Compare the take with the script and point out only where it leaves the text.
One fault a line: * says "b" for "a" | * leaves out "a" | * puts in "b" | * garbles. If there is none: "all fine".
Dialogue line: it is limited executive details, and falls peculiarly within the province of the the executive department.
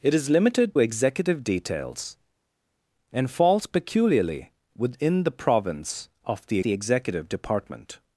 all fine